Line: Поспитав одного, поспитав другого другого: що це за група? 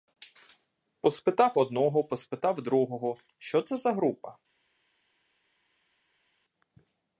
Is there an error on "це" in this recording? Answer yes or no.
no